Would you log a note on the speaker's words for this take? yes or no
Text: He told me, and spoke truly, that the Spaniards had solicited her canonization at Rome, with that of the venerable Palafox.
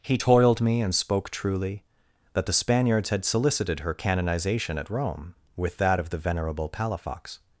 yes